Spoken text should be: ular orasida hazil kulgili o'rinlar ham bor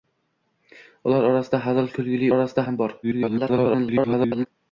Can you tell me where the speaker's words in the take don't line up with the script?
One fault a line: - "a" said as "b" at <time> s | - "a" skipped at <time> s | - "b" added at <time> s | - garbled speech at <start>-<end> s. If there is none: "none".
- "o'rinlar" said as "orasida" at 2.3 s
- garbled speech at 3.0-4.5 s